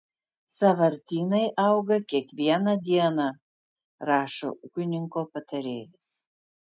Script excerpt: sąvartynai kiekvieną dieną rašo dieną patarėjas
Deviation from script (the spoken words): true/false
true